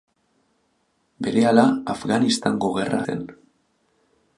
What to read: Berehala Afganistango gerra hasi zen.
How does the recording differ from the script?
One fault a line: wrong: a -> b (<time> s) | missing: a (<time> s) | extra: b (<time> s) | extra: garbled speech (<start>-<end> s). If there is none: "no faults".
missing: hasi (3.0 s)